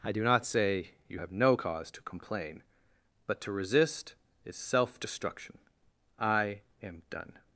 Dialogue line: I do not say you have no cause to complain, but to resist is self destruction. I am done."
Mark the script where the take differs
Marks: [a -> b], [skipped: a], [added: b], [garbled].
I do not say you have no cause to complain, but to resist is self destruction. I am done."